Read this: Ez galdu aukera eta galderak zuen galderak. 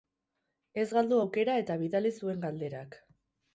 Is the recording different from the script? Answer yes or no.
yes